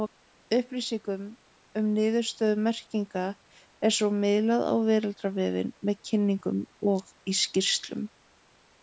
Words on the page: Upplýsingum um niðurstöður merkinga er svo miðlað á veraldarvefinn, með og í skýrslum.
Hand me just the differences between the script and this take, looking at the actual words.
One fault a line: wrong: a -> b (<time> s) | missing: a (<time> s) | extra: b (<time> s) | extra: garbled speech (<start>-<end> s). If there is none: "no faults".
extra: kynningum (6.1 s)